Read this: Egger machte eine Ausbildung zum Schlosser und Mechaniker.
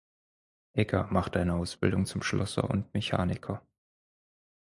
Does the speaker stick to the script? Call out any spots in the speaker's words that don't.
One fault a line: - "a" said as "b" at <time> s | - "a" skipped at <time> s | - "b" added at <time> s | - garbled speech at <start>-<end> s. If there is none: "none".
none